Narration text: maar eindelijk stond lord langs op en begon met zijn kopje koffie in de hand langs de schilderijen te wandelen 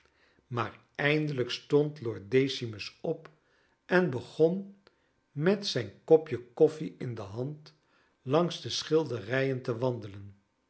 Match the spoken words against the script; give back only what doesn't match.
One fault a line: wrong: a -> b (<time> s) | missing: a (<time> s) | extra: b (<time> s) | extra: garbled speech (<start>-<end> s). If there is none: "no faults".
wrong: langs -> decimus (2.3 s)